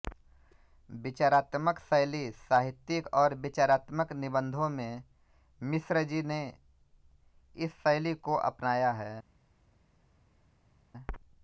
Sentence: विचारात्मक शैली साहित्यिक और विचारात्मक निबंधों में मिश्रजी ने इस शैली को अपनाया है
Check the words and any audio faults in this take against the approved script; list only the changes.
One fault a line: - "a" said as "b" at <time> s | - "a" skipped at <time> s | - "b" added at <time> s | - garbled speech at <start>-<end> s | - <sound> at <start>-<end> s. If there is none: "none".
none